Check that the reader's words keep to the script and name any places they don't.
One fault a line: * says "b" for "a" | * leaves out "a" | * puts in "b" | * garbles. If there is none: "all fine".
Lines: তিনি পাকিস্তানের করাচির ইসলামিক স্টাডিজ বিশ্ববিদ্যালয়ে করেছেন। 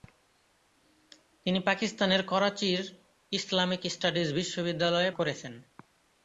all fine